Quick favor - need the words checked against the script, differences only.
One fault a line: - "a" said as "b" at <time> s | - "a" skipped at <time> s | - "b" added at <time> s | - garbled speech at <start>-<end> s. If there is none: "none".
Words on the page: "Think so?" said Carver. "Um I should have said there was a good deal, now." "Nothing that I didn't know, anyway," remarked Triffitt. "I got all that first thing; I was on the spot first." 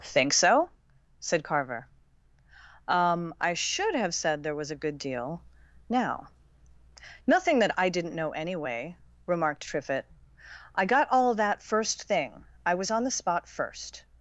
none